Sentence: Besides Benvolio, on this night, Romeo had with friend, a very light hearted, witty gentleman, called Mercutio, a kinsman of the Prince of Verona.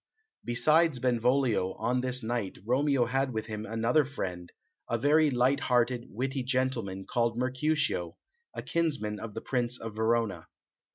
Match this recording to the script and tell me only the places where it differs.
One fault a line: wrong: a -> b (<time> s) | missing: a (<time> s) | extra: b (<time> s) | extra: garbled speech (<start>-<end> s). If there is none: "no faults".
extra: him another (3.5 s)